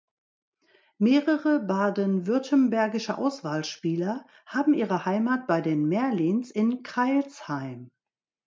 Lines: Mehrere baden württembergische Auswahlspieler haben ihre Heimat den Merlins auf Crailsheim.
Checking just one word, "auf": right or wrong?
wrong